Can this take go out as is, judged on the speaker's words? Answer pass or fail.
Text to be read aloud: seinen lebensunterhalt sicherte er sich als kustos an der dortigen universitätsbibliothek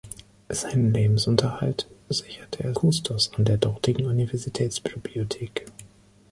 fail